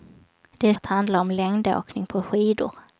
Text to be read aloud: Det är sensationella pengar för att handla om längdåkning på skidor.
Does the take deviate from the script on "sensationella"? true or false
true